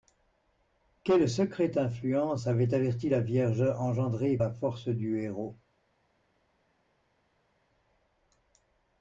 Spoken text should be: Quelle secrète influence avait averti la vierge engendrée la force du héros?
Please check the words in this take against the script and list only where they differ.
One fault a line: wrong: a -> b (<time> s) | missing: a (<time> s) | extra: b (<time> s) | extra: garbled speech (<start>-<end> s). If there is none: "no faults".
no faults